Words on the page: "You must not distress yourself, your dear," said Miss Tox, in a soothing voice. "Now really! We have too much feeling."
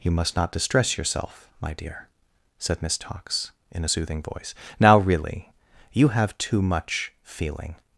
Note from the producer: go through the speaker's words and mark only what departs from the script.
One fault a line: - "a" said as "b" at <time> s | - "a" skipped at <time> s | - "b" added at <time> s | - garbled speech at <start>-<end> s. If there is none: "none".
- "your" said as "my" at 1.6 s
- "We" said as "You" at 5.9 s